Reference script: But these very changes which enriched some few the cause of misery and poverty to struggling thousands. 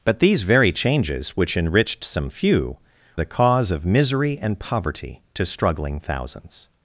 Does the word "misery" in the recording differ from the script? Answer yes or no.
no